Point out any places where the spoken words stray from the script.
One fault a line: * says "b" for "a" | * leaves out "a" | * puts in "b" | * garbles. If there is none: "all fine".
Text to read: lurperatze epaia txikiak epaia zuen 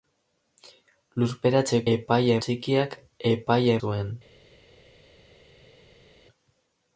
all fine